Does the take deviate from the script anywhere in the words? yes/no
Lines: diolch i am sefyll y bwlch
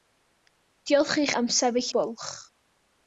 no